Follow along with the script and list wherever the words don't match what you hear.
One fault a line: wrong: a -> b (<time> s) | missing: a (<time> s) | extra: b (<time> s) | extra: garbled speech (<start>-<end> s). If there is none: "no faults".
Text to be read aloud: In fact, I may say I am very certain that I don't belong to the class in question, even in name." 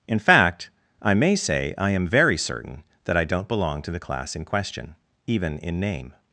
no faults